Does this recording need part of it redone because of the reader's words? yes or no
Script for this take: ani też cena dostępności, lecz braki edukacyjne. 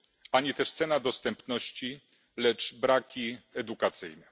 no